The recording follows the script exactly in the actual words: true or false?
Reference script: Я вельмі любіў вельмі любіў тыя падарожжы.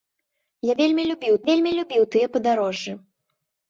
true